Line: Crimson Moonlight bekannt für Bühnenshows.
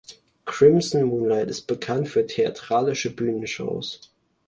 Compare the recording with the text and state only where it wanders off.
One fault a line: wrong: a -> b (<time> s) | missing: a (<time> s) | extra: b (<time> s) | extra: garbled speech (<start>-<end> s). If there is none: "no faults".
extra: ist (1.5 s)
extra: theatralische (2.3 s)